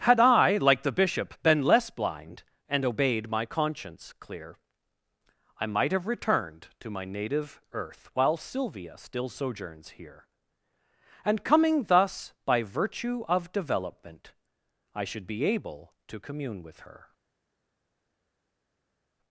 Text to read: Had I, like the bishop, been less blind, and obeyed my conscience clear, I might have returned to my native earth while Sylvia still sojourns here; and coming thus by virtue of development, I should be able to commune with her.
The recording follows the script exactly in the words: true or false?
true